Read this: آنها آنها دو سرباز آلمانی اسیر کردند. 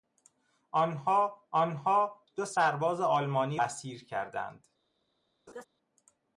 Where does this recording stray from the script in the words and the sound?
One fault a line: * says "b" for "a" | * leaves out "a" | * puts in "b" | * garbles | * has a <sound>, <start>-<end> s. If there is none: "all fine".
* has a laugh, 5.5-5.6 s